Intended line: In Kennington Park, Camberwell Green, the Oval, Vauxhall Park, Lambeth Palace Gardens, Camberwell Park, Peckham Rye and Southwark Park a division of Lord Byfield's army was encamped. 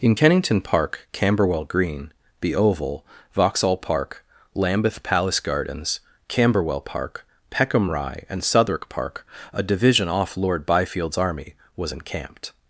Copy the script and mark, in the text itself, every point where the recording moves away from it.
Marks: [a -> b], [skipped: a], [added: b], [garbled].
In Kennington Park, Camberwell Green, the Oval, Vauxhall Park, Lambeth Palace Gardens, Camberwell Park, Peckham Rye and Southwark Park a division [of -> off] Lord Byfield's army was encamped.